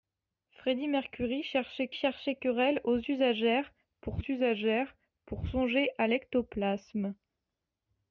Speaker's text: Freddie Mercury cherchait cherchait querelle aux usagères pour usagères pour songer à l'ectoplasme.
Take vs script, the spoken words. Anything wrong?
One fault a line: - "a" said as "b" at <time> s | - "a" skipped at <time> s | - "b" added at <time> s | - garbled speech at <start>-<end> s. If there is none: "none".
none